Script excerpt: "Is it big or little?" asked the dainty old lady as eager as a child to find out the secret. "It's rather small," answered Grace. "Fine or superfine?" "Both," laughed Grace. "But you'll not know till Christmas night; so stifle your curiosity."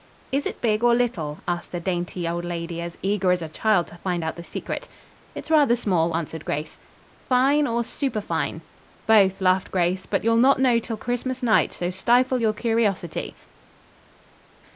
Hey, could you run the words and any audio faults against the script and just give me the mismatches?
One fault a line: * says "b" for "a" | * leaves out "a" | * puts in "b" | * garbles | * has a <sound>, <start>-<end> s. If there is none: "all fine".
all fine